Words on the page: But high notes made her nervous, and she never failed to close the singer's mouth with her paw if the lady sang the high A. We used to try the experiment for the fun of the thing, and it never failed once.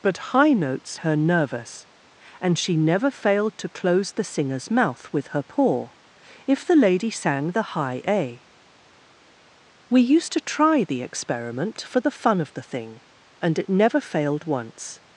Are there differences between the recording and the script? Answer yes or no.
yes